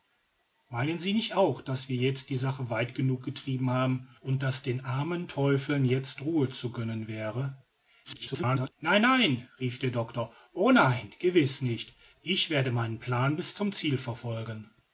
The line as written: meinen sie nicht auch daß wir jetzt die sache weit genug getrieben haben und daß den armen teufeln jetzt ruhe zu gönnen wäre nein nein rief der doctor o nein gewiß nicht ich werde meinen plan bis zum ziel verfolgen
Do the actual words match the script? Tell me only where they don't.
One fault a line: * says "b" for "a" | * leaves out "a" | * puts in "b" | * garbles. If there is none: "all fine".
* garbles